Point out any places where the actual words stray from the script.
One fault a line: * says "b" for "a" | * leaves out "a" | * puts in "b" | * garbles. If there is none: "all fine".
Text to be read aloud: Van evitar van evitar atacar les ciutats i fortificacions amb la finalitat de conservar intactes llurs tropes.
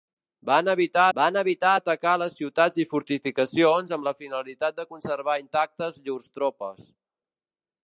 all fine